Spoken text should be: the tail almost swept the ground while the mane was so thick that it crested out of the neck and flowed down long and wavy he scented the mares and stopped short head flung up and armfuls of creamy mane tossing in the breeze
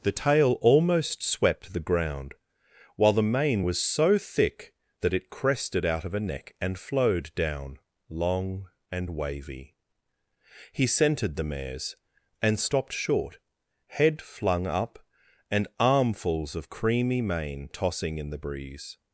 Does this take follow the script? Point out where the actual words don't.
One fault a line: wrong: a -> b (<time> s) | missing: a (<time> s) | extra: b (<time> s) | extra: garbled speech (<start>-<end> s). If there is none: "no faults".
wrong: the -> a (6.1 s)